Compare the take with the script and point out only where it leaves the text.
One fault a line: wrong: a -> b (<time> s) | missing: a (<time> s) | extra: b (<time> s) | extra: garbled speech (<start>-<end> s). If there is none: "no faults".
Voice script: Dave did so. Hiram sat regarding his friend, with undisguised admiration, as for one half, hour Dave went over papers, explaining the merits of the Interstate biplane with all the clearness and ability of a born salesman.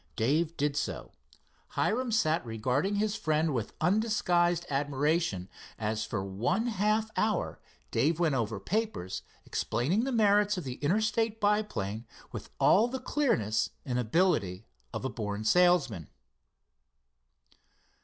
no faults